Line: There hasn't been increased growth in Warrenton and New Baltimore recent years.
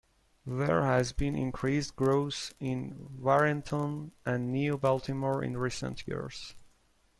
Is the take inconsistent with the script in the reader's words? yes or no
yes